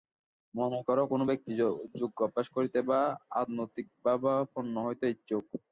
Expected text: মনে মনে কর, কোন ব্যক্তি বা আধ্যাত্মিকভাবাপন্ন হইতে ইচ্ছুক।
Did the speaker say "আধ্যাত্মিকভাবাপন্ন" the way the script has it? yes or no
yes